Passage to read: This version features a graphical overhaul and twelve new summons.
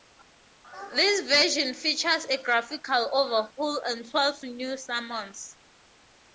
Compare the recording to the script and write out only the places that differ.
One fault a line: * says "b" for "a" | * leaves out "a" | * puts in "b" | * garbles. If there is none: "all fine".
all fine